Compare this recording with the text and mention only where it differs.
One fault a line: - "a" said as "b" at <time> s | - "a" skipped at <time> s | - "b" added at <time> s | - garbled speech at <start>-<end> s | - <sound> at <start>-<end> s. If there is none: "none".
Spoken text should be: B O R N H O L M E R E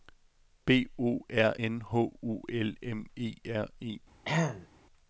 - throat clearing at 4.2-4.7 s